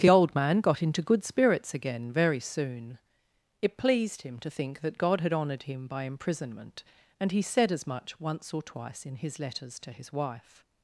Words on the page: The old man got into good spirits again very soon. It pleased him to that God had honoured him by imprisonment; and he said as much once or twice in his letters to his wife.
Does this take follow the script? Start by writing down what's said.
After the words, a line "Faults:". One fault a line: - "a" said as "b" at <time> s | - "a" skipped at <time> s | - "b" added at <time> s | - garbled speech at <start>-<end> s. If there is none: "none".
The old man got into good spirits again very soon. It pleased him to think that God had honoured him by imprisonment; and he said as much once or twice in his letters to his wife.
Faults:
- "think" added at 4.5 s